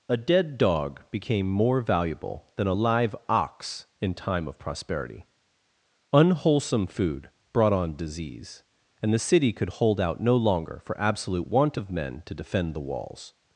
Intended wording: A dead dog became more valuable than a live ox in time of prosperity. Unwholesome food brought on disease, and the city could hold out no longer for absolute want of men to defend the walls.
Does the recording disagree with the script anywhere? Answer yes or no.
no